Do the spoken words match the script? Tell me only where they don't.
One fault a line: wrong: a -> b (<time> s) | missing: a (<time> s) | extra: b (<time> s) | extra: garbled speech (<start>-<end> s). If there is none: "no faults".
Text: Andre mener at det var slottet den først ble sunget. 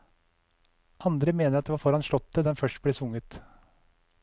extra: foran (1.8 s)